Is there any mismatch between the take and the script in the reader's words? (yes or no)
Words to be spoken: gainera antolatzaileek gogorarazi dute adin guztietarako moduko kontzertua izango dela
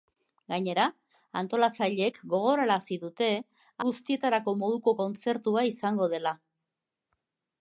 yes